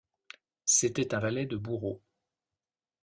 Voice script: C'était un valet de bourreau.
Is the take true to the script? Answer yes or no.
yes